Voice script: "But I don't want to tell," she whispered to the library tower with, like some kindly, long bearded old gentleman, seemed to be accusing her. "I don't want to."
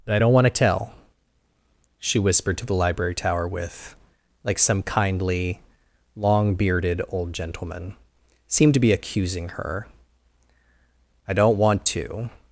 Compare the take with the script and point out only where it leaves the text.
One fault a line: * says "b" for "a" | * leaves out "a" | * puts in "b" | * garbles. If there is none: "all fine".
all fine